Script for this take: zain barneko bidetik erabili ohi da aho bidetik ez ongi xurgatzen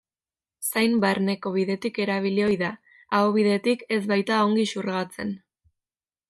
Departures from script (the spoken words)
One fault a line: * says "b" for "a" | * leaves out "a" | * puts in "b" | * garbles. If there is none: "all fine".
* puts in "baita"